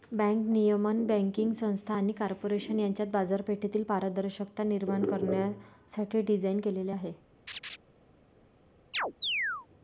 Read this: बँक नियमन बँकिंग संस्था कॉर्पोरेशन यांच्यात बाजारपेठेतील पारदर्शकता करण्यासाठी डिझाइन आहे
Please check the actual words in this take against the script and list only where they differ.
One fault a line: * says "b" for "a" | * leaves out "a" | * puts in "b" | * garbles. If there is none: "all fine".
* puts in "आणि"
* puts in "निर्माण"
* puts in "केलेले"